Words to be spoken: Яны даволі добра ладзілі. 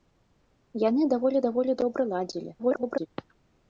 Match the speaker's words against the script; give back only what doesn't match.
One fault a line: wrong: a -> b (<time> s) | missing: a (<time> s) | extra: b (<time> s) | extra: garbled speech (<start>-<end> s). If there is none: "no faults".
extra: даволі (1.5 s)
extra: garbled speech (2.6-3.1 s)